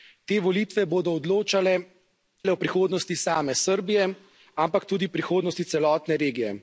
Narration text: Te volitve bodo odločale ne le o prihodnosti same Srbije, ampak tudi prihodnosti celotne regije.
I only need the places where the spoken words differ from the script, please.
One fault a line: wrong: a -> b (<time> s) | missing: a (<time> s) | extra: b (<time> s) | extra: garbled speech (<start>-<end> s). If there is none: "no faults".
missing: ne (1.7 s)